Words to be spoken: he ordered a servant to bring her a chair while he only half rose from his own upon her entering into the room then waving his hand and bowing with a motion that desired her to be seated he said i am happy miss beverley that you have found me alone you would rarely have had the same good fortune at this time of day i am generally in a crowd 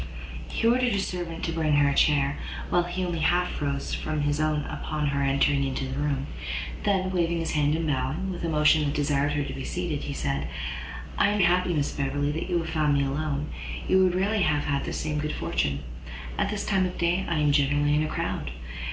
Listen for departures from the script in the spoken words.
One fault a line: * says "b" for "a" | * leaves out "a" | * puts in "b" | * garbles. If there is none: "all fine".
all fine